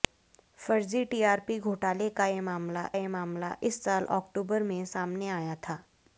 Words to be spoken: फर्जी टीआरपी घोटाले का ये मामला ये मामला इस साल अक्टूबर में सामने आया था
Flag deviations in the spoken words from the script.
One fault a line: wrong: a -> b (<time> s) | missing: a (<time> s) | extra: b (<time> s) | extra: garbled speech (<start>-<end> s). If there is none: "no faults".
no faults